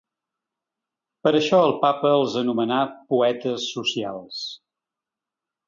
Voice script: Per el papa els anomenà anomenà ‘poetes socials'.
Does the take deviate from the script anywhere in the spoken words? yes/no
yes